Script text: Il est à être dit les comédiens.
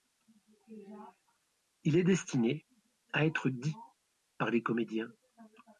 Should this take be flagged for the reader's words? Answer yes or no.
yes